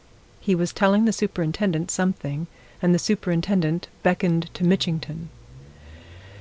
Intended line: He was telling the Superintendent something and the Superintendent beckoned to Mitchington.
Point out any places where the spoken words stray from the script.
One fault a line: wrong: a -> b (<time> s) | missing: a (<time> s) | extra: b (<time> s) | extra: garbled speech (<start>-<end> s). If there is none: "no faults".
no faults